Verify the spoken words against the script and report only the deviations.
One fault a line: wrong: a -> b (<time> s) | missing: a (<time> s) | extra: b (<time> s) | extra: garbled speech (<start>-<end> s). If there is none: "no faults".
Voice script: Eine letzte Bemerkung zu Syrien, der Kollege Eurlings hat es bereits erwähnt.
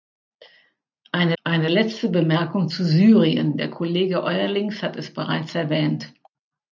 extra: eine (1.4 s)